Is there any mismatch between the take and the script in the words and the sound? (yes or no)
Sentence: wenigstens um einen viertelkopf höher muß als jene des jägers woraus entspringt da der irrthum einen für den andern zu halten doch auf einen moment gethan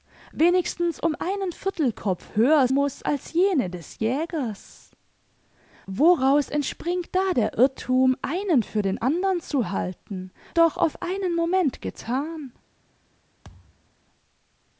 yes